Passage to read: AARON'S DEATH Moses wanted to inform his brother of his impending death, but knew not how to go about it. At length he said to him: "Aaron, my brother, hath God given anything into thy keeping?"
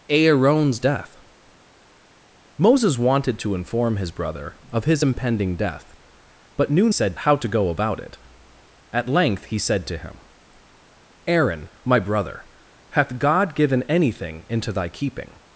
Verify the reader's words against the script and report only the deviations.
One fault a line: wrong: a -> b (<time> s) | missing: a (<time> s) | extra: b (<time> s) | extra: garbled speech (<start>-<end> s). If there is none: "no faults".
wrong: not -> said (6.9 s)